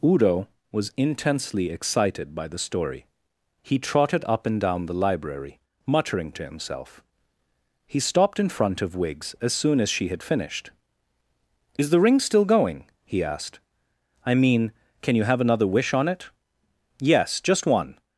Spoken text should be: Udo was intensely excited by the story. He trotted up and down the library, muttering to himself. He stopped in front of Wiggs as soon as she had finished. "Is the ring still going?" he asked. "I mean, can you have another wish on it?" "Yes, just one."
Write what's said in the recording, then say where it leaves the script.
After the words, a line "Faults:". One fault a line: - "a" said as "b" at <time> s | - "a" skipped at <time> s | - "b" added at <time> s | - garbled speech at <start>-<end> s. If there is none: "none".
Udo was intensely excited by the story. He trotted up and down the library, muttering to himself. He stopped in front of Wiggs as soon as she had finished. "Is the ring still going?" he asked. "I mean, can you have another wish on it?" "Yes, just one."
Faults:
none